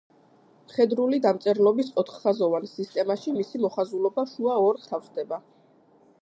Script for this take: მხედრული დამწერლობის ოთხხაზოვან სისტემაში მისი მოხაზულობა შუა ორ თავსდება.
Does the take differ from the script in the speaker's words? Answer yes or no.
no